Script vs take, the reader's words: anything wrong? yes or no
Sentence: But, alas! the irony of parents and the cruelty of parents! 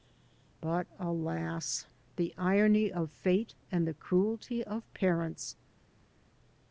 yes